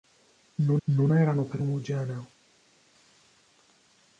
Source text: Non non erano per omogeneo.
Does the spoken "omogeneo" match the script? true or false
true